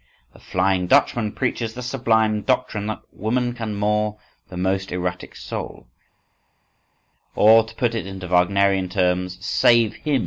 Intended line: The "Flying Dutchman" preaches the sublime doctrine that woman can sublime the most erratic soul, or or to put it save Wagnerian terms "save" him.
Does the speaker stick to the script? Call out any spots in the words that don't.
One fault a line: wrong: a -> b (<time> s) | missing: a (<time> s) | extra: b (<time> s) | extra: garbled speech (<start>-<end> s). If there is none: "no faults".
wrong: sublime -> moor (3.8 s)
missing: or (7.6 s)
wrong: save -> into (8.1 s)